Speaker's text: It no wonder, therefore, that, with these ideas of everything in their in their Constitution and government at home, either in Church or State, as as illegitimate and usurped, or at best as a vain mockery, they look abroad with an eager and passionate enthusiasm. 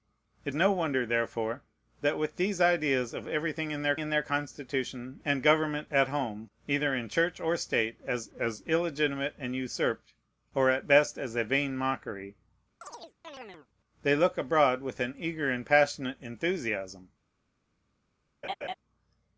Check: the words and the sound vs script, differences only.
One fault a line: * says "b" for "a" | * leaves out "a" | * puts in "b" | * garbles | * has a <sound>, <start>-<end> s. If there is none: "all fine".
* has a chirp, 12.8-13.7 s
* has a laugh, 18.4-18.7 s